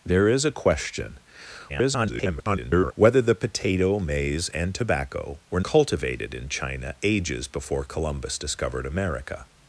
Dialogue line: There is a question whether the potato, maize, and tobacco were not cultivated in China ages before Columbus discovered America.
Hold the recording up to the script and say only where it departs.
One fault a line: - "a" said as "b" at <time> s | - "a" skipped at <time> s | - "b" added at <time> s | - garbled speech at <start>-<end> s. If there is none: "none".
- garbled speech at 1.7-2.9 s
- "not" skipped at 5.6 s